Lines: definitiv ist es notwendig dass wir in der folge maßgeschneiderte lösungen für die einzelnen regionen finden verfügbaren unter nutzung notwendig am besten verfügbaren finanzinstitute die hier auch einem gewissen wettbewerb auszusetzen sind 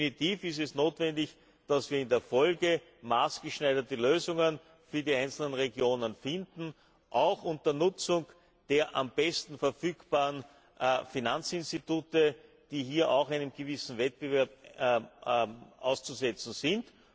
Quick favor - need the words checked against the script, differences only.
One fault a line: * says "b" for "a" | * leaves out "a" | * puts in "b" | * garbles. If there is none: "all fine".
* says "auch" for "verfügbaren"
* says "der" for "notwendig"